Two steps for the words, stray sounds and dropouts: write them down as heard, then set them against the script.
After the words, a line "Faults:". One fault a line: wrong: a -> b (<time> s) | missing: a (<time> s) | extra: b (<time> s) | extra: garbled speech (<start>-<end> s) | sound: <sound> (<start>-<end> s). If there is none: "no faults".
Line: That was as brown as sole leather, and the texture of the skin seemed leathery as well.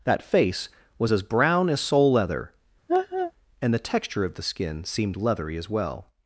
That face was as brown as sole leather, and the texture of the skin seemed leathery as well.
Faults:
extra: face (0.2 s)
sound: laugh (2.9-3.3 s)